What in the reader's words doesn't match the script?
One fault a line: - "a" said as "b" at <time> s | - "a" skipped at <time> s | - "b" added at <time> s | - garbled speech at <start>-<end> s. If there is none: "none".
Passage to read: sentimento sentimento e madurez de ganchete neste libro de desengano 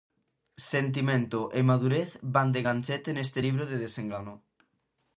- "sentimento" skipped at 1.4 s
- "van" added at 2.4 s